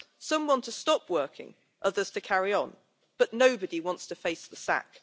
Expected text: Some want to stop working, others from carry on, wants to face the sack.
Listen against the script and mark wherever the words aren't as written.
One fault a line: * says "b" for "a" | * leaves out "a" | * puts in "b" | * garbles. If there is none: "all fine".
* says "to" for "from"
* puts in "but nobody"